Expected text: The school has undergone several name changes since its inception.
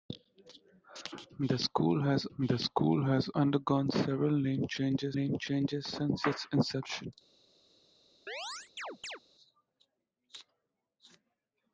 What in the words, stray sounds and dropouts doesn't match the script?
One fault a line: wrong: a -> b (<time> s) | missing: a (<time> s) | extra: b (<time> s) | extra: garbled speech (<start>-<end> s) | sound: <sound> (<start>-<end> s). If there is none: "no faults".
extra: the school has (2.4 s)
extra: name changes (5.1 s)
sound: chirp (8.3-9.2 s)